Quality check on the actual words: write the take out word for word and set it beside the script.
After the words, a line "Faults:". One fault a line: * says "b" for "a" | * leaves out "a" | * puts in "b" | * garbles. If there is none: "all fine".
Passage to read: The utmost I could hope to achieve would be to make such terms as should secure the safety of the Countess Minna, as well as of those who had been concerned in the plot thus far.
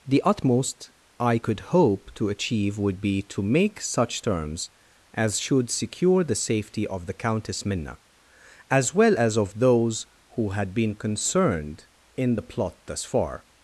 The utmost I could hope to achieve would be to make such terms as should secure the safety of the Countess Minna, as well as of those who had been concerned in the plot thus far.
Faults:
all fine